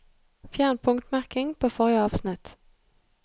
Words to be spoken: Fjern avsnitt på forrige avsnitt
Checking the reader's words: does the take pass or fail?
fail